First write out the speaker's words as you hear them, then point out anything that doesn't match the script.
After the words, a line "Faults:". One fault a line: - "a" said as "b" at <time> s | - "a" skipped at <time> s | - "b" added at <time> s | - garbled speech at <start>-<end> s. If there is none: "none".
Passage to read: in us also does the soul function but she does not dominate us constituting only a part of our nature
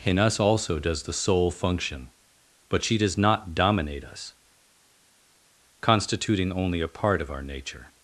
in us also does the soul function but she does not dominate us constituting only a part of our nature
Faults:
none